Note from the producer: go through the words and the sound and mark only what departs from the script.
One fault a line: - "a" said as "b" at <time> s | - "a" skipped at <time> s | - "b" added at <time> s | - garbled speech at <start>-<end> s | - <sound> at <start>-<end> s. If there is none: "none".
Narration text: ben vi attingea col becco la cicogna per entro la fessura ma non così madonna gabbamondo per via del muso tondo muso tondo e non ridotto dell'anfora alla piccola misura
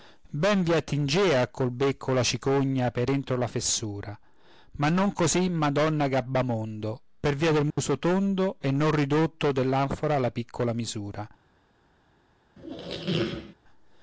- dropout at 7.7-7.8 s
- "muso tondo" skipped at 8.6 s
- squeak at 12.6-13.6 s